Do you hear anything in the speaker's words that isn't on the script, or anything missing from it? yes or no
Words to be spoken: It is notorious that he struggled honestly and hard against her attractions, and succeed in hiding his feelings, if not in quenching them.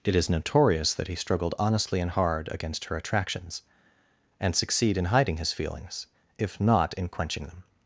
no